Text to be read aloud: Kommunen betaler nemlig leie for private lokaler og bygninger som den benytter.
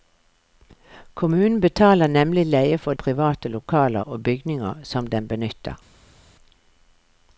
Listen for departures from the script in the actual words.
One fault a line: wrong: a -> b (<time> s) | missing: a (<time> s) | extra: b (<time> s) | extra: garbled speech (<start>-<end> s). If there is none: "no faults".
no faults